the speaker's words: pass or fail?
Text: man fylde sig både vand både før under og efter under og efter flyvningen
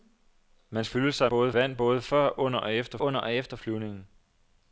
pass